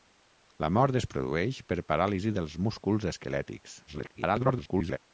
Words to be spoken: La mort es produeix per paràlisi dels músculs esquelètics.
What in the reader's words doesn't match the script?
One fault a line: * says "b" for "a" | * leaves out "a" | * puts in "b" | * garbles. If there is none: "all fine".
* garbles